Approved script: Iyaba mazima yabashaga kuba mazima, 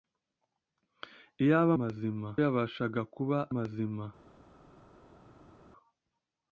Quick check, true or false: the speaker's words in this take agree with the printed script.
true